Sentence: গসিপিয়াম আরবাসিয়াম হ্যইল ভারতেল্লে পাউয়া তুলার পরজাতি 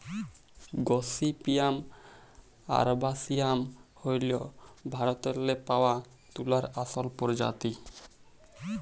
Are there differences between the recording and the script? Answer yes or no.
yes